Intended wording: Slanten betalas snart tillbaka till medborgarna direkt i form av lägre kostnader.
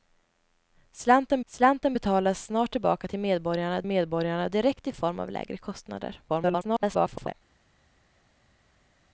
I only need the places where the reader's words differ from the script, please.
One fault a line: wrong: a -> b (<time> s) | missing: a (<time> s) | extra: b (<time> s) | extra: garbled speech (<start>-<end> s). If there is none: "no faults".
extra: slanten (1.4 s)
extra: medborgarna (3.9 s)
extra: garbled speech (6.3-7.3 s)